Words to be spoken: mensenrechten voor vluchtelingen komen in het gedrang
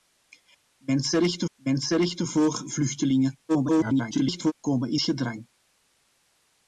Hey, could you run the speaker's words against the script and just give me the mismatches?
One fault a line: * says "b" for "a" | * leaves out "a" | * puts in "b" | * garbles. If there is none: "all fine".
* puts in "mensenrechten"
* garbles
* leaves out "het"